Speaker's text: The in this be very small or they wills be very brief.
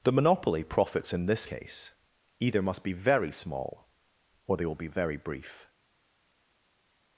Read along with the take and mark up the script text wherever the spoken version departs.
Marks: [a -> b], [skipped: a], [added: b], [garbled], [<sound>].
The [added: monopoly profits] in this [added: case either must] be very small or they [wills -> will] be very brief.